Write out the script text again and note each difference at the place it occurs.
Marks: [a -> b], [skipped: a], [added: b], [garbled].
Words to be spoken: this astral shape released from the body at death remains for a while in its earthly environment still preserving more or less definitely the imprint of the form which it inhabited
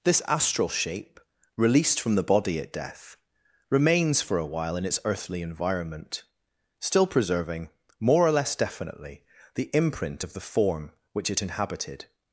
this astral shape released from the body at death remains for a while in its earthly environment still preserving more or less definitely the imprint of the form which it inhabited